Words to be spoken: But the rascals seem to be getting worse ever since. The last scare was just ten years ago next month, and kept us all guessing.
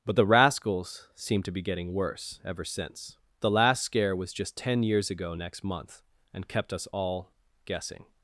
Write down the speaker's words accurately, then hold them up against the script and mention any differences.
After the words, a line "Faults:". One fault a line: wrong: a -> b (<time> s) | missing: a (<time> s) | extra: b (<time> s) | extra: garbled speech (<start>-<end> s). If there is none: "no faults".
But the rascals seem to be getting worse ever since. The last scare was just ten years ago next month, and kept us all guessing.
Faults:
no faults